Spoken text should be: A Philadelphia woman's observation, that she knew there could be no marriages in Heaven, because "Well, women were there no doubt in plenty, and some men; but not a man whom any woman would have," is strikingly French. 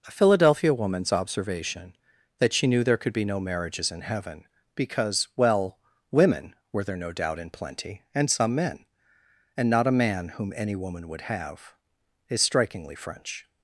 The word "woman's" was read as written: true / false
true